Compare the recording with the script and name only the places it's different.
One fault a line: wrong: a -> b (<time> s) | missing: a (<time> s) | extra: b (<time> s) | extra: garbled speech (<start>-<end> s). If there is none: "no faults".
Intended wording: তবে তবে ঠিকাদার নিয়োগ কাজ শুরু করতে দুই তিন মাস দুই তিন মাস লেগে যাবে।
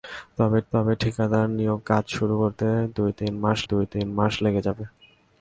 no faults